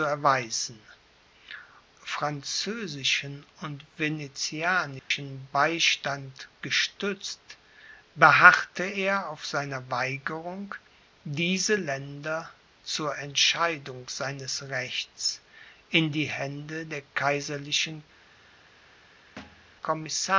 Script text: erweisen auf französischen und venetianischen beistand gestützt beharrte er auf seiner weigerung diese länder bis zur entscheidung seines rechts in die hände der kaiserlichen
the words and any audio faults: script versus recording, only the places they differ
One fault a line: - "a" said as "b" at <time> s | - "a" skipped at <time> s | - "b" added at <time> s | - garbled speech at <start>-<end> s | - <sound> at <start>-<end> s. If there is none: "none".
- "auf" skipped at 0.8 s
- dropout at 5.0-5.1 s
- "bis" skipped at 12.5 s
- thud at 19.4-19.7 s